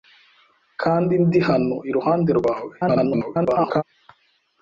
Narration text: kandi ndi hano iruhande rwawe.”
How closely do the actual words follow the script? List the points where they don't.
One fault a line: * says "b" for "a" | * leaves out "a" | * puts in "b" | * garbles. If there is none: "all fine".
* garbles